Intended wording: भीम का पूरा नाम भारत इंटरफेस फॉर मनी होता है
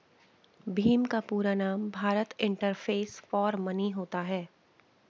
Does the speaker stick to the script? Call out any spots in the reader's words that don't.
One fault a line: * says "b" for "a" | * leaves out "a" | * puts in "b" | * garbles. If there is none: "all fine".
all fine